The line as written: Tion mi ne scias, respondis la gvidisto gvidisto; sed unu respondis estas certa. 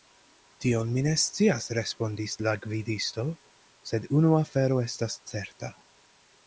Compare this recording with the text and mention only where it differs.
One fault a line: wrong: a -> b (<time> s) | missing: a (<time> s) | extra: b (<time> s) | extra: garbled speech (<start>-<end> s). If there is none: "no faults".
missing: gvidisto (3.3 s)
wrong: respondis -> afero (4.4 s)